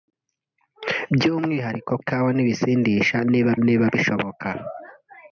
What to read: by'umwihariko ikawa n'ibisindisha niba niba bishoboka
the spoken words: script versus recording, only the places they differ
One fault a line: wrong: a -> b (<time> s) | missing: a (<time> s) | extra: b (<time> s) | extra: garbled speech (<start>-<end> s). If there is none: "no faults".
no faults